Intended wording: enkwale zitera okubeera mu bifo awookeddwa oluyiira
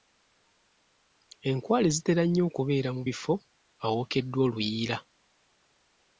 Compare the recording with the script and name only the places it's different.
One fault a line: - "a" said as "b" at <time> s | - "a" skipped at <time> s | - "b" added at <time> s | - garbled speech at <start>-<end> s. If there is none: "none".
- "nnyo" added at 2.2 s